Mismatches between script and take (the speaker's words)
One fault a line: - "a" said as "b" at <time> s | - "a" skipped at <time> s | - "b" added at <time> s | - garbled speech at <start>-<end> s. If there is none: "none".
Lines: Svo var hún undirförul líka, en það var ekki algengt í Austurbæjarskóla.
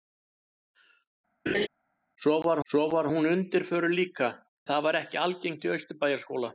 - "svo var" added at 2.7 s
- "en" skipped at 4.3 s